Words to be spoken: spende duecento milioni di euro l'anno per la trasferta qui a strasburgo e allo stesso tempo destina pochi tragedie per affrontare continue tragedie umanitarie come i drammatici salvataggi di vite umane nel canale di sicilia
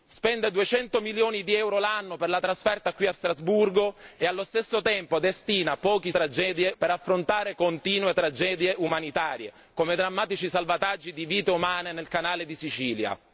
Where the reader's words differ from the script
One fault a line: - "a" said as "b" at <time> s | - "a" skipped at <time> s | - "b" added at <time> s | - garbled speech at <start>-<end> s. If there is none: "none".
none